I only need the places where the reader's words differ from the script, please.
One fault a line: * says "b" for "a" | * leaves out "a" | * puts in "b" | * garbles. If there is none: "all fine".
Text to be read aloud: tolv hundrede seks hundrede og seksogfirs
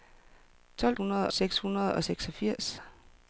all fine